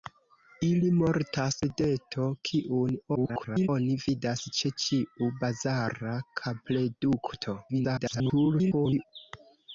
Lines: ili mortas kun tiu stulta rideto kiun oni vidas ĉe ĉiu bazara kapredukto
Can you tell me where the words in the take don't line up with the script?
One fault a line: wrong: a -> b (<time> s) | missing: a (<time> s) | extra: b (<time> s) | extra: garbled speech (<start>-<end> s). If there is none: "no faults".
missing: kun tiu stulta (1.6 s)
extra: garbled speech (3.2-3.7 s)
extra: garbled speech (7.7-9.0 s)